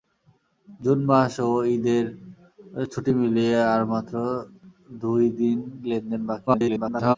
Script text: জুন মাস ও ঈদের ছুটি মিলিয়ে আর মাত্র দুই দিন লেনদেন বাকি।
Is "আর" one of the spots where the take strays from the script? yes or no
no